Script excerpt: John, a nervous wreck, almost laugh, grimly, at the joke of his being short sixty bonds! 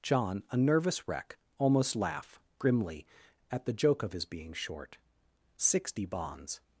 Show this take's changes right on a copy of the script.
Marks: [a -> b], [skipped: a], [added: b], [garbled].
John, a nervous wreck, almost laugh, grimly, at the joke of his being short sixty bonds!